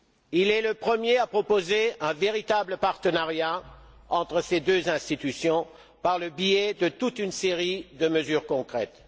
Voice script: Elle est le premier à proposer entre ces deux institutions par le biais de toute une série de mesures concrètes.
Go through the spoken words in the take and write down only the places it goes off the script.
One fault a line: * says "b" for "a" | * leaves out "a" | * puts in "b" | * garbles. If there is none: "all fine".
* says "Il" for "Elle"
* puts in "un véritable partenariat"